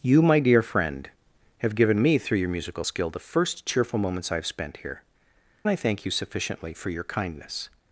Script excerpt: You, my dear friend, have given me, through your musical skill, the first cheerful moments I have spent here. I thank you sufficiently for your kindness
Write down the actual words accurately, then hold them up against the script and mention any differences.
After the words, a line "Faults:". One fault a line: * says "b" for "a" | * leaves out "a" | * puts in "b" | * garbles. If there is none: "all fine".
You, my dear friend, have given me, through your musical skill, the first cheerful moments I have spent here. I thank you sufficiently for your kindness
Faults:
all fine